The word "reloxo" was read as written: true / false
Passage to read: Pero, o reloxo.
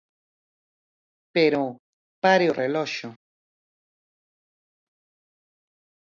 true